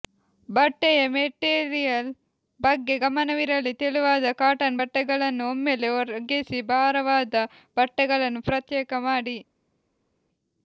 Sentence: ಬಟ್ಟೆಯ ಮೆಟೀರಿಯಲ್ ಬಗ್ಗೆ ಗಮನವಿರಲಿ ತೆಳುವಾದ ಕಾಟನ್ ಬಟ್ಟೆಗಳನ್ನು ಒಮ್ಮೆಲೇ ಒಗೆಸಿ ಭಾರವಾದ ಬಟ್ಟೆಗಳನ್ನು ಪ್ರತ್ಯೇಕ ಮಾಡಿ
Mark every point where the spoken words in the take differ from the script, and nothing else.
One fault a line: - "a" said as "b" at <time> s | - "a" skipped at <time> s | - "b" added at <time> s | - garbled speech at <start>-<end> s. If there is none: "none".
none